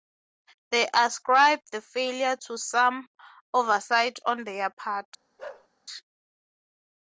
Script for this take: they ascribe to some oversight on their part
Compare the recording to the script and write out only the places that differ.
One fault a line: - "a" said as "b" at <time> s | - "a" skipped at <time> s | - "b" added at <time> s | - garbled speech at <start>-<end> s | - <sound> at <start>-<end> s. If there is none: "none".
- "the failure" added at 1.7 s
- bark at 5.4-5.7 s